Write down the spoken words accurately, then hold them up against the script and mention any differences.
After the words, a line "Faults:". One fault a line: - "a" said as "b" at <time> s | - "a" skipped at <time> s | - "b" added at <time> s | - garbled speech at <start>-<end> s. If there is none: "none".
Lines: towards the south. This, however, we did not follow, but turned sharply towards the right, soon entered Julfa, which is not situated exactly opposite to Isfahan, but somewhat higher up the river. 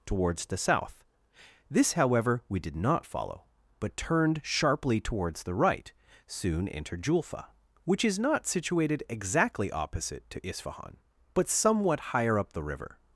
towards the south. This, however, we did not follow, but turned sharply towards the right, soon entered Julfa, which is not situated exactly opposite to Isfahan, but somewhat higher up the river.
Faults:
none